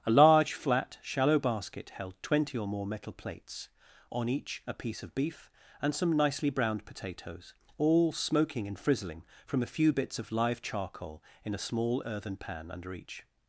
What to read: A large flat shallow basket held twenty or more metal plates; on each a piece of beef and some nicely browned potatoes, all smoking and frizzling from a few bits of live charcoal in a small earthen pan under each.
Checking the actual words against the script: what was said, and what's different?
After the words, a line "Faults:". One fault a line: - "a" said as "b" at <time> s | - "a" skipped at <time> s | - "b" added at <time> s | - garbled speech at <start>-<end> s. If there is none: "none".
A large flat shallow basket held twenty or more metal plates; on each a piece of beef and some nicely browned potatoes, all smoking and frizzling from a few bits of live charcoal in a small earthen pan under each.
Faults:
none